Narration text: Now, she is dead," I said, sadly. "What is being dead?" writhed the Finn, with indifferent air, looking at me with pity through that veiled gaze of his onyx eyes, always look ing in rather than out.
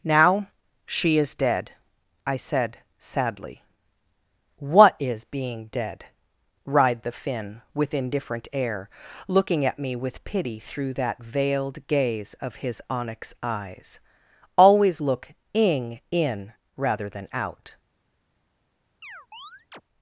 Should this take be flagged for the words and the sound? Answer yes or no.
yes